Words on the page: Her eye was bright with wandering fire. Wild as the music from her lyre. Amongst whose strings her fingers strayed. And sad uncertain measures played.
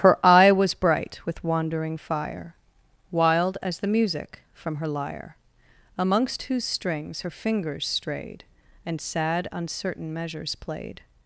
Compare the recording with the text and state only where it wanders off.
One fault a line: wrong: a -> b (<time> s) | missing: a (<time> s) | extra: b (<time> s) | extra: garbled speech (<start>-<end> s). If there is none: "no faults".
no faults